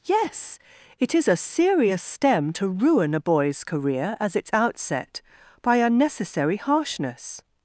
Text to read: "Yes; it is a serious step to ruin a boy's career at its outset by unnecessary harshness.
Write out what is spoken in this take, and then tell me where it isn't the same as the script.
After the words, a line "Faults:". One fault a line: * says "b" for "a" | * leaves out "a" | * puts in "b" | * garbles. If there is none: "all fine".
"Yes; it is a serious stem to ruin a boy's career as its outset by unnecessary harshness.
Faults:
* says "stem" for "step"
* says "as" for "at"